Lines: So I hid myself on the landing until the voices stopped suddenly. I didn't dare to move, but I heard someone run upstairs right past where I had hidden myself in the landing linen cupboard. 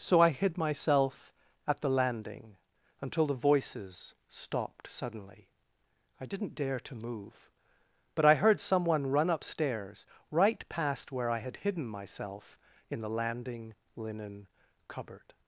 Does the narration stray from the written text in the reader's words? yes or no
yes